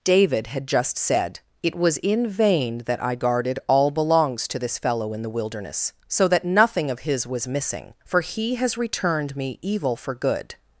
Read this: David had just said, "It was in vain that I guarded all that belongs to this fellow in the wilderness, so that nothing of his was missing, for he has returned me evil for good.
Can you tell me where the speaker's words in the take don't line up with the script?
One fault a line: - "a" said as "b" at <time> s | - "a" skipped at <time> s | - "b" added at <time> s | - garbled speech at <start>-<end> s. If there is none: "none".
- "that" skipped at 3.9 s